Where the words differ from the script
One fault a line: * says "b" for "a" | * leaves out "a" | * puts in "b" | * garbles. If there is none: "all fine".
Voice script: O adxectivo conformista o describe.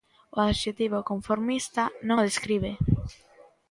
* puts in "non"